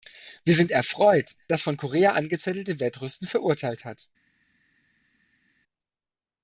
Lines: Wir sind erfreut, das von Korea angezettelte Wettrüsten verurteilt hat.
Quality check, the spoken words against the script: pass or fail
pass